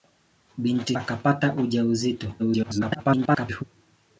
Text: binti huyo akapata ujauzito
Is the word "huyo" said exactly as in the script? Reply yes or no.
no